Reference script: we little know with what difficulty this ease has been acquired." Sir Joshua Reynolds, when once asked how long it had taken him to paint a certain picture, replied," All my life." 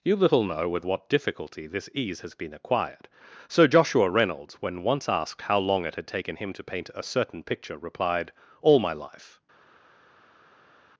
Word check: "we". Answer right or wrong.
wrong